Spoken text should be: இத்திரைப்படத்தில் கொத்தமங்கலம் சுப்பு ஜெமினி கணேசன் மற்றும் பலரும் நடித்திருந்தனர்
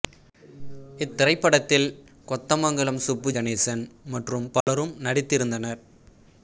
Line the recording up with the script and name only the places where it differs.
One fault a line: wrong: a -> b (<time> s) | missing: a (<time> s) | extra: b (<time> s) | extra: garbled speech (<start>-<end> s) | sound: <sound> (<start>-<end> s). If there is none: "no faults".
missing: ஜெமினி (3.3 s)
sound: dropout (4.6-4.7 s)